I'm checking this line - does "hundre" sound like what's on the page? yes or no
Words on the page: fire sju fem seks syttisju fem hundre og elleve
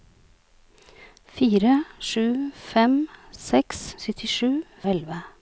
no